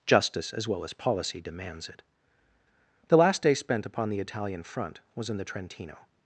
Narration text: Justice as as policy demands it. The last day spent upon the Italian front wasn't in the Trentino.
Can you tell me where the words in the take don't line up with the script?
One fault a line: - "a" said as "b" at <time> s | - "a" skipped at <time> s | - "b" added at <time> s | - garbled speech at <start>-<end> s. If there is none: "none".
- "well" added at 0.7 s
- "wasn't" said as "was" at 5.2 s